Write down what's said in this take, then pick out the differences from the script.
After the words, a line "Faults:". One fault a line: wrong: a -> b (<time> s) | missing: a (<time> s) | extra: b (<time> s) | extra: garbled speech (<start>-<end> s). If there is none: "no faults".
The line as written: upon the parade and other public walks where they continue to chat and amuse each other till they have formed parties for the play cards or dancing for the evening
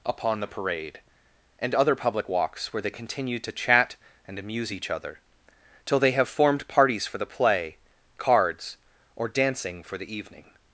upon the parade and other public walks where they continue to chat and amuse each other till they have formed parties for the play cards or dancing for the evening
Faults:
no faults